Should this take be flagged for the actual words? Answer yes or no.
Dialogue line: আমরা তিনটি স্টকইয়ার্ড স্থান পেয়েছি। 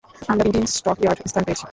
no